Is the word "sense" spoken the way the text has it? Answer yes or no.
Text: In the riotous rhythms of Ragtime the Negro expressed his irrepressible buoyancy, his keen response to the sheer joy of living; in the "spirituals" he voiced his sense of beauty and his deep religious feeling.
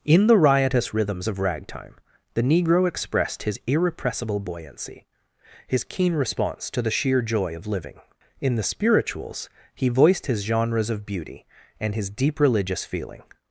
no